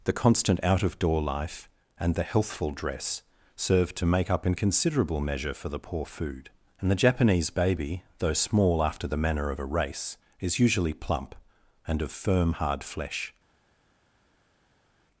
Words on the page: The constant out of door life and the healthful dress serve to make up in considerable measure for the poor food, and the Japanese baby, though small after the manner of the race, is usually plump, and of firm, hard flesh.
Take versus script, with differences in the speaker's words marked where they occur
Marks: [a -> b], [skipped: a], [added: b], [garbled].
The constant out of door life and the healthful dress serve to make up in considerable measure for the poor food, and the Japanese baby, though small after the manner of [the -> a] race, is usually plump, and of firm, hard flesh.